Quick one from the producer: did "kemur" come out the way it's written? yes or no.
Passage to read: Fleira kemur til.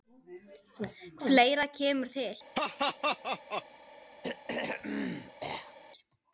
yes